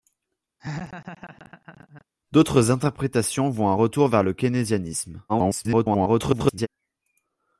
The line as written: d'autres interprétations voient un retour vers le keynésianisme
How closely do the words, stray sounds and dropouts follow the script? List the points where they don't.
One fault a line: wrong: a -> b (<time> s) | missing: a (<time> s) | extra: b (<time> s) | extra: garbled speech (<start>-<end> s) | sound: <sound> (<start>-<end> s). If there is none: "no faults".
sound: laugh (0.6-2.0 s)
extra: garbled speech (5.3-6.7 s)